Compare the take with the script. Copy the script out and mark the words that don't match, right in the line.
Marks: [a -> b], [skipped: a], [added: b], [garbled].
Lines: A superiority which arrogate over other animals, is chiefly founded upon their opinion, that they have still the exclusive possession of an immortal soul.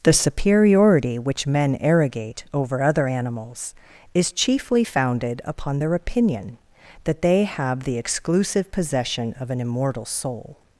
[A -> The] superiority which [added: men] arrogate over other animals, is chiefly founded upon their opinion, that they have [skipped: still] the exclusive possession of an immortal soul.